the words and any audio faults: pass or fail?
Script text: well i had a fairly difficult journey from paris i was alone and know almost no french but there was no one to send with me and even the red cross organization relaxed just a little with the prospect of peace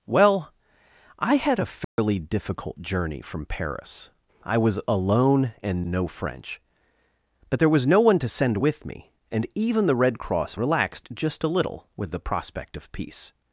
fail